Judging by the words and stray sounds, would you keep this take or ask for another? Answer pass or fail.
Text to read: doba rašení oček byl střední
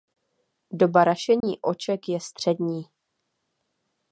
fail